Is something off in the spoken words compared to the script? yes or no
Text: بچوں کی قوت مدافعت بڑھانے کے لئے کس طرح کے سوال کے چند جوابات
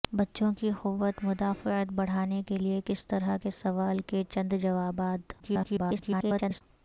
yes